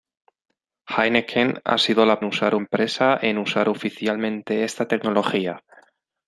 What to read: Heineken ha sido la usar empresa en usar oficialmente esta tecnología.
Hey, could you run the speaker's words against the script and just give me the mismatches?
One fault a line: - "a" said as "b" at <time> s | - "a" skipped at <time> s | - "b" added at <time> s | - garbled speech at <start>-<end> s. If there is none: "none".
none